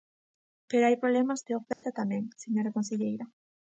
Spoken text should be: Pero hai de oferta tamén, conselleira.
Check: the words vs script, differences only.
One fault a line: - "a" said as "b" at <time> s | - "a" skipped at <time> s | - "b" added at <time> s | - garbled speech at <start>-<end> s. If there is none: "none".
- "problemas" added at 1.0 s
- "señora" added at 2.4 s